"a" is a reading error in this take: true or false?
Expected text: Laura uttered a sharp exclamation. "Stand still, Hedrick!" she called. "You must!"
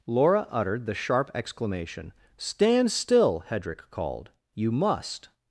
true